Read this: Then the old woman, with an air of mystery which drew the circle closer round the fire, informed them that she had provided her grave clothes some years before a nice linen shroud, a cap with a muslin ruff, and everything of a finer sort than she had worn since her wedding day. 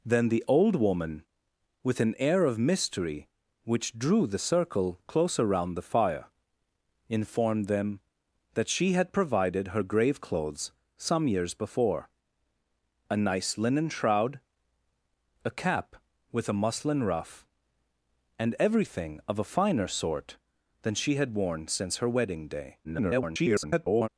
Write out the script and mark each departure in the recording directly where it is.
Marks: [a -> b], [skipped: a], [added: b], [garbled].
Then the old woman, with an air of mystery which drew the circle closer round the fire, informed them that she had provided her grave clothes some years before a nice linen shroud, a cap with a muslin ruff, and everything of a finer sort than she had worn since her wedding day. [garbled]